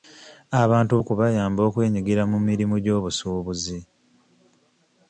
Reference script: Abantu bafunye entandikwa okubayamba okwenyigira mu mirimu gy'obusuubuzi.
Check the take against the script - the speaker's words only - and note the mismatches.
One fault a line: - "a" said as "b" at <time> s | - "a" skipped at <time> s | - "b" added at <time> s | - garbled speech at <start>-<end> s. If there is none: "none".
- "bafunye entandikwa" skipped at 0.9 s